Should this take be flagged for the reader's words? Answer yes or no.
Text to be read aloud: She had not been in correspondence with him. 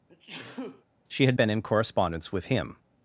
yes